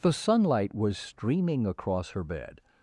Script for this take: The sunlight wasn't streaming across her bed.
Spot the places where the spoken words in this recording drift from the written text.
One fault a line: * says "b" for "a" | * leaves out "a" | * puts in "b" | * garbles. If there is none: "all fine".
* says "was" for "wasn't"